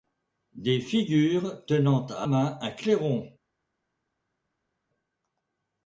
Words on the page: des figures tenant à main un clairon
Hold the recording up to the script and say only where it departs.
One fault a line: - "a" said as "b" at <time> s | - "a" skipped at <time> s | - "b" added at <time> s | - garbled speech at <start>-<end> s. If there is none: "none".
none